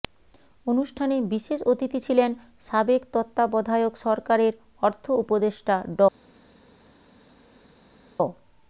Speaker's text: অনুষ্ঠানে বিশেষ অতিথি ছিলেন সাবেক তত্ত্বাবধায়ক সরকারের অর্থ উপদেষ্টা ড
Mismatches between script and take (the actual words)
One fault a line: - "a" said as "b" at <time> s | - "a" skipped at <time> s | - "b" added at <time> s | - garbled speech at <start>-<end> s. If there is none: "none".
none